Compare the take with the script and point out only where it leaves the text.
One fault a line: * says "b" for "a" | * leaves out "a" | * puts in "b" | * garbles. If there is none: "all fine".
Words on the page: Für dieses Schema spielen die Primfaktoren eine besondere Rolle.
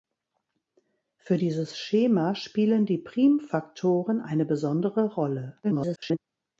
* garbles